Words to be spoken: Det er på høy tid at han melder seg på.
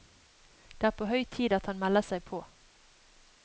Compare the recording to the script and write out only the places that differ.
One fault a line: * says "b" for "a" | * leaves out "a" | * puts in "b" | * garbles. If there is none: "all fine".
all fine